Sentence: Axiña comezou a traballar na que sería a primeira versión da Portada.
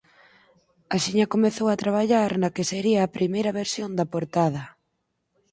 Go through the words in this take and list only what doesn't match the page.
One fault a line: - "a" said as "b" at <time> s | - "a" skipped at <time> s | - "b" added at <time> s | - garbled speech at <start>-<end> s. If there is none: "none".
none